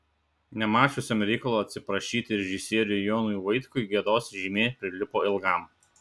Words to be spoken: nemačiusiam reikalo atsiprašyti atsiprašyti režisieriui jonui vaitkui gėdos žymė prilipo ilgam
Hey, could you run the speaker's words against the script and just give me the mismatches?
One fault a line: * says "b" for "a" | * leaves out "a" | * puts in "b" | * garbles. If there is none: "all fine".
* leaves out "atsiprašyti"